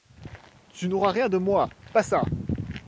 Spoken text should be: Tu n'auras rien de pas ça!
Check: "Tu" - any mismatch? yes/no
no